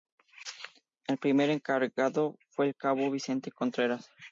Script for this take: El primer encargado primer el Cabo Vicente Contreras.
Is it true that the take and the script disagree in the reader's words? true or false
true